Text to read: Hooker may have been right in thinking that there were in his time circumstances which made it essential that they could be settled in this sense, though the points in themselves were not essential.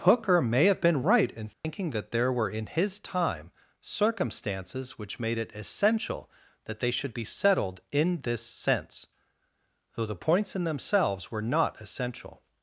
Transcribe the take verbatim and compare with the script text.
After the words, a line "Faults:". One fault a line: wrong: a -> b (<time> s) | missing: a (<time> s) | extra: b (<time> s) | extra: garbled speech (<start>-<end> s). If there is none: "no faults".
Hooker may have been right in thinking that there were in his time circumstances which made it essential that they should be settled in this sense, though the points in themselves were not essential.
Faults:
wrong: could -> should (6.9 s)